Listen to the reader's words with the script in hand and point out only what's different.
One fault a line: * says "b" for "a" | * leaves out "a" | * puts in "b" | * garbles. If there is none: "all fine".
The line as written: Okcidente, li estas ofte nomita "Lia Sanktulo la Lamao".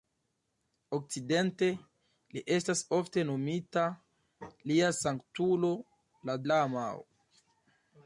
all fine